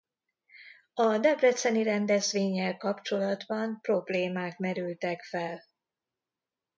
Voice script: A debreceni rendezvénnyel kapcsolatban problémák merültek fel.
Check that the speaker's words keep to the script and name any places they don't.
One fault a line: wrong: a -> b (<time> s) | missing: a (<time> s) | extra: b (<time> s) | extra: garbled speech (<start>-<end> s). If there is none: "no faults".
no faults